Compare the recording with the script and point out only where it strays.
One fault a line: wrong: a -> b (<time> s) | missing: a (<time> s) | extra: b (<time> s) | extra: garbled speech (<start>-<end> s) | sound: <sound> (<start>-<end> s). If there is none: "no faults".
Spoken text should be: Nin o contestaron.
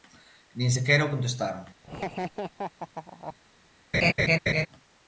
extra: sequera (0.8 s)
sound: laugh (1.8-3.4 s)
sound: laugh (3.9-4.7 s)